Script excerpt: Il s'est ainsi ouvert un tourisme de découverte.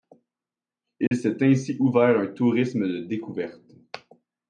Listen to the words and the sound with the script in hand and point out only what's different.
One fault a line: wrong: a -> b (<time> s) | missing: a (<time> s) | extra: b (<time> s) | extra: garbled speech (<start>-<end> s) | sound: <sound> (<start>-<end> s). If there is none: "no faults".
sound: dropout (1.1-1.1 s)